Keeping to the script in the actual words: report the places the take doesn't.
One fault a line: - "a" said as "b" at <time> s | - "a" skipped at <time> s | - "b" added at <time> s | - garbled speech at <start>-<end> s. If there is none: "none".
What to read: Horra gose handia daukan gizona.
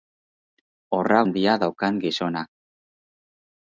- "gose" skipped at 1.2 s